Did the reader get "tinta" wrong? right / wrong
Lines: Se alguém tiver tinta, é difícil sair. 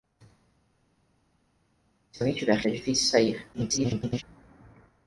wrong